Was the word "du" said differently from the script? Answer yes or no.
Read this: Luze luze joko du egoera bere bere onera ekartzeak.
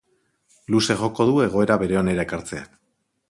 no